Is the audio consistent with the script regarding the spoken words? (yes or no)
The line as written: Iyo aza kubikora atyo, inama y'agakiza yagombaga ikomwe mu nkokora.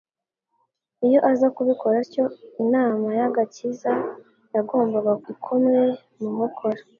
yes